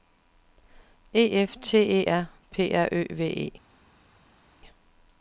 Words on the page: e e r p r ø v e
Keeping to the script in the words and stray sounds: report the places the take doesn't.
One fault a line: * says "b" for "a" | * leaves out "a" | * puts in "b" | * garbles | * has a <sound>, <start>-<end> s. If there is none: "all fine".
* puts in "f t"